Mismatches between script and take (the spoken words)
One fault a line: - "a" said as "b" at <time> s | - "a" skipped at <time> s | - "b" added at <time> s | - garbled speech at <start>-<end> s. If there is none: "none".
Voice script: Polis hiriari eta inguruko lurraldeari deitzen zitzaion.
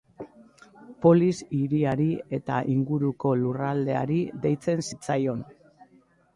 none